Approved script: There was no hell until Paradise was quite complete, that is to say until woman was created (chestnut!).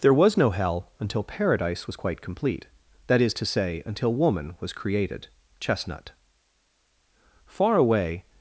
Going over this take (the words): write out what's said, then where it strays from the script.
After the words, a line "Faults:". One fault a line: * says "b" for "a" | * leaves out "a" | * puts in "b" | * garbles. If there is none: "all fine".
There was no hell until Paradise was quite complete, that is to say until woman was created (chestnut!). Far away
Faults:
* puts in "Far away"